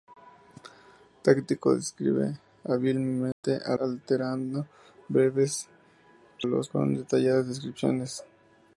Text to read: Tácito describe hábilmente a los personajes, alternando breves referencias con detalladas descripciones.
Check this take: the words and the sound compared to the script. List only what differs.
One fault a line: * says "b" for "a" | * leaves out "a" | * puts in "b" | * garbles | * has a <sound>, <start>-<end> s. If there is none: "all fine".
* has a dropout, 3.3-3.4 s
* leaves out "los personajes"
* says "los" for "referencias"